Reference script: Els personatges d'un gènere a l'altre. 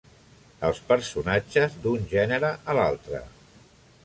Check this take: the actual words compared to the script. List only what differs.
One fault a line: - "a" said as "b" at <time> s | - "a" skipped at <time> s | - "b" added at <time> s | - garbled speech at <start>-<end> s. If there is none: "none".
none